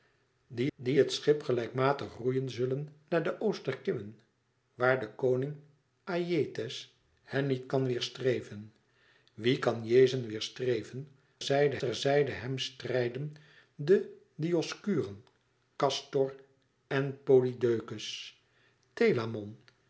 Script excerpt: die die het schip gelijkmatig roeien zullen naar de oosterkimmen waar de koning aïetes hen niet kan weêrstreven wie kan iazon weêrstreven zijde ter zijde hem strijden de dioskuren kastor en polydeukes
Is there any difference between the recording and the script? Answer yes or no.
no